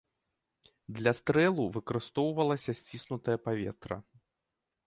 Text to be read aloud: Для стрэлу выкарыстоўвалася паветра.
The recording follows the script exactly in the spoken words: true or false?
false